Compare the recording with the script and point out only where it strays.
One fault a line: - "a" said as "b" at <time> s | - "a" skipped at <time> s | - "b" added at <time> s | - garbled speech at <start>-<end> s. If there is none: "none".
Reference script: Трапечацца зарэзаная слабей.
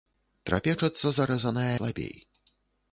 none